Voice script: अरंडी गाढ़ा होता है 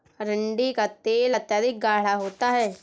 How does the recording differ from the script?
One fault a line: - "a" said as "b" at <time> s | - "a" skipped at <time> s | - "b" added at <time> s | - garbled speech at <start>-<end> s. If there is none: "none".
- "का तेल अत्यधिक" added at 0.7 s